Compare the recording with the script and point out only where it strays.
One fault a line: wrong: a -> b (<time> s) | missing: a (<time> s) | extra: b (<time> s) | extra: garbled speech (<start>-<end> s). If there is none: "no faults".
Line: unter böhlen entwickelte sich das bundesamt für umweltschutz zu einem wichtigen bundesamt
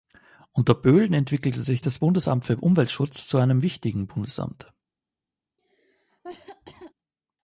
no faults